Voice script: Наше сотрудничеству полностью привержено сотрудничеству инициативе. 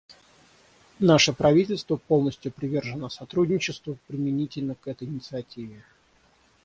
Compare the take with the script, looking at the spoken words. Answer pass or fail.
fail